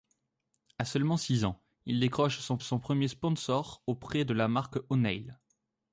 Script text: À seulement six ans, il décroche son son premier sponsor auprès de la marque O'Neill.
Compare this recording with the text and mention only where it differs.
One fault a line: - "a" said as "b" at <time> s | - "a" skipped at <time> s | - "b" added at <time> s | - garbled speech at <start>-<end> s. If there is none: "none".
none